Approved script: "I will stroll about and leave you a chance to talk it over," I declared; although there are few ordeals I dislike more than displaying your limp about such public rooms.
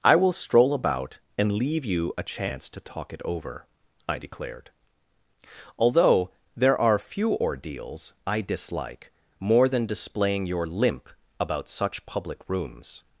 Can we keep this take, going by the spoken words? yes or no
yes